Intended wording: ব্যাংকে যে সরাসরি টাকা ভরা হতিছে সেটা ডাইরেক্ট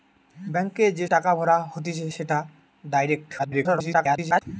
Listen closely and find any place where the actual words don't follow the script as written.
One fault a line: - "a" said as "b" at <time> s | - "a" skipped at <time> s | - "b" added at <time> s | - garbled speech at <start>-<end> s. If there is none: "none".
- "সরাসরি" skipped at 1.1 s
- garbled speech at 3.4-4.4 s